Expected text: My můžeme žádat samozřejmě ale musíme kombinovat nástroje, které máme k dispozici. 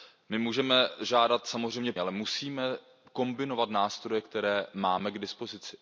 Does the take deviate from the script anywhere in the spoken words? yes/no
no